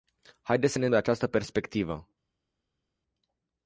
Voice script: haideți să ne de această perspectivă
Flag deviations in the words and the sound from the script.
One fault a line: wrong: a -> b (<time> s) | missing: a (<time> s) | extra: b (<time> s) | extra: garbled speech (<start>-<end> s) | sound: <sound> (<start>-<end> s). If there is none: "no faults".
no faults